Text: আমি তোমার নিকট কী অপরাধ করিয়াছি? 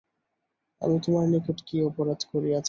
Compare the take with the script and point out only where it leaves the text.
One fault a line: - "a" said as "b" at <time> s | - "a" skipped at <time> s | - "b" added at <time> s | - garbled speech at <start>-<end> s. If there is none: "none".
none